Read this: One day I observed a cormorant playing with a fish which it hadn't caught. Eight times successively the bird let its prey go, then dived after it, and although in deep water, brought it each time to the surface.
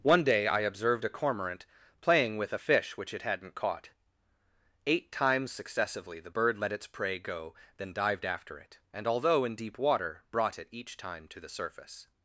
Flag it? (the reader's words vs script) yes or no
no